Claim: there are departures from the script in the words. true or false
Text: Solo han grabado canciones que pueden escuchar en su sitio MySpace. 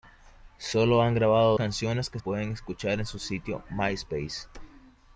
false